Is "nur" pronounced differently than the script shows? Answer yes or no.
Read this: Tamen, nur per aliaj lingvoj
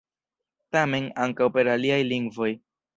yes